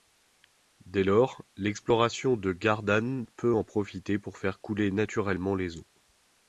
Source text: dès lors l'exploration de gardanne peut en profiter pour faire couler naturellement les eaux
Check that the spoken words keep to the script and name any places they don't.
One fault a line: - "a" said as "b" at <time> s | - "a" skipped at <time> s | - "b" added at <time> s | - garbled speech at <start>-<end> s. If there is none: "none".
none